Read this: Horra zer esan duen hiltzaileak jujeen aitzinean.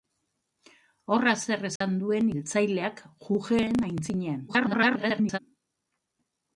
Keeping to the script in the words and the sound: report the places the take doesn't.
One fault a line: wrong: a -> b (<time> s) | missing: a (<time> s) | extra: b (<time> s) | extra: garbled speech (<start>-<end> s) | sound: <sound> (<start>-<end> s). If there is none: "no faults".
sound: dropout (1.8-1.8 s)
extra: garbled speech (4.5-5.4 s)